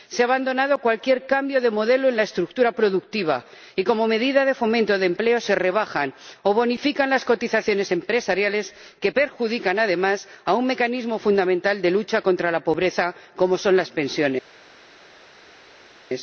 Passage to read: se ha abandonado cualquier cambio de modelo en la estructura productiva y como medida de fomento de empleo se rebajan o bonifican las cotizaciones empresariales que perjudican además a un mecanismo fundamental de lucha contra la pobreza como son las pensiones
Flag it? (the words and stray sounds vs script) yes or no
no